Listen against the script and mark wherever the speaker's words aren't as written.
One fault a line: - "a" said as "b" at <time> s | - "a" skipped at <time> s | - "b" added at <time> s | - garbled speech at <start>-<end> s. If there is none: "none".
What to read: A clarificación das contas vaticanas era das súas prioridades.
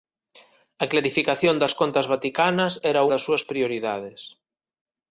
none